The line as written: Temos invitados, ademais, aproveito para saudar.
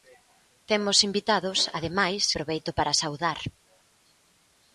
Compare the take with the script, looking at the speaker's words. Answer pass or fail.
pass